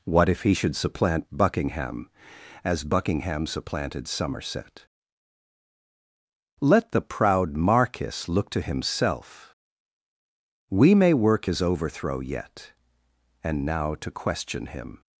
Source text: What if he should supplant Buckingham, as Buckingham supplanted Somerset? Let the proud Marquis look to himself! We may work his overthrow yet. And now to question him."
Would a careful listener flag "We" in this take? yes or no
no